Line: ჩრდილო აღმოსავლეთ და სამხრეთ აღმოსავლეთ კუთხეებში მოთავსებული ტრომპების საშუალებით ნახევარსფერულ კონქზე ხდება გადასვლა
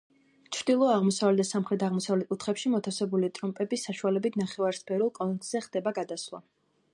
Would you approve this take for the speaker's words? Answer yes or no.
yes